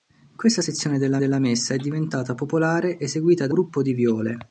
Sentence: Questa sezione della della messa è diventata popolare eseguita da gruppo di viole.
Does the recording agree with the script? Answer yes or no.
yes